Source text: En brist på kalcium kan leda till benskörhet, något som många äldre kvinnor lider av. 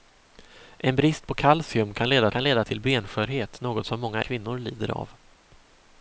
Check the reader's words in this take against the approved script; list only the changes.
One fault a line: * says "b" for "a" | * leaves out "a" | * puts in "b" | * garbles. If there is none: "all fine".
* puts in "kan leda"
* leaves out "äldre"